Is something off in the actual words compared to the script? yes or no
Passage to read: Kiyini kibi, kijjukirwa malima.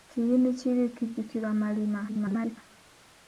yes